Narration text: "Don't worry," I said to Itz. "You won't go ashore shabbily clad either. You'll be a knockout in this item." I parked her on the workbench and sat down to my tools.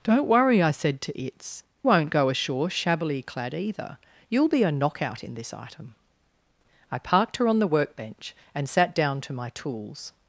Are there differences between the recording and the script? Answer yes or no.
yes